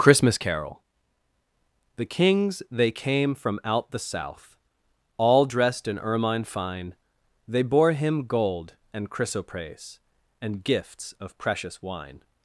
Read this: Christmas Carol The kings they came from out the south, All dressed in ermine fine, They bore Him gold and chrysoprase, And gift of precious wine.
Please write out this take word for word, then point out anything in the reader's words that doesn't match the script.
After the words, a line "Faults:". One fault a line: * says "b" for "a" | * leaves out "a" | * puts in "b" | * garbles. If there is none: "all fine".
Christmas Carol The kings they came from out the south, All dressed in ermine fine, They bore Him gold and chrysoprase, And gifts of precious wine.
Faults:
* says "gifts" for "gift"